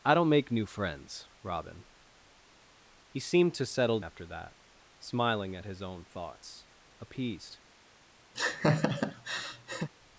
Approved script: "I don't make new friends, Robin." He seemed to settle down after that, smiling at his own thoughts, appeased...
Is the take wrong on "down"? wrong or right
wrong